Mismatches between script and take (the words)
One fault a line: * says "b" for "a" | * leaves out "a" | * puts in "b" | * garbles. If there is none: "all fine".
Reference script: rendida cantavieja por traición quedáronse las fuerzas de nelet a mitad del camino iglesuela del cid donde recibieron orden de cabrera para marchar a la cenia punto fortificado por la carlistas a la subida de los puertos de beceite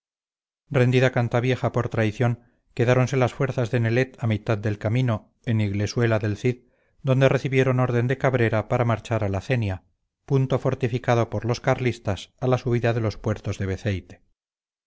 * puts in "en"
* says "los" for "la"